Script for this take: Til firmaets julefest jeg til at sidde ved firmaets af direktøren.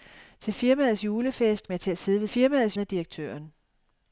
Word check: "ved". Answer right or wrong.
right